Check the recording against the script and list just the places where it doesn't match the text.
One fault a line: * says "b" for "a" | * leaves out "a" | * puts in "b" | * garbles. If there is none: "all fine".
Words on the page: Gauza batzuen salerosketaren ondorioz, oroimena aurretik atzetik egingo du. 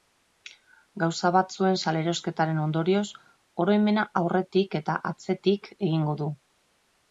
* puts in "eta"